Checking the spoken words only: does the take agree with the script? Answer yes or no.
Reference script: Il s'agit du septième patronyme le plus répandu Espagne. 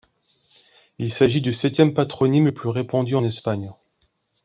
yes